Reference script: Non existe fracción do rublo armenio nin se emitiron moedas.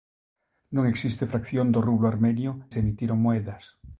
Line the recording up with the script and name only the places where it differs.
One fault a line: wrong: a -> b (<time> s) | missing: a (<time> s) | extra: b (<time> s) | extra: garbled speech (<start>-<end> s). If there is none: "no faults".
missing: nin (2.5 s)